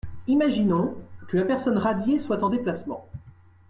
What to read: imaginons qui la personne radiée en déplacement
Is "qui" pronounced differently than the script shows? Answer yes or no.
yes